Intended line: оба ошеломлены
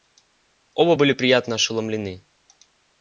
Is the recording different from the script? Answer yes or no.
yes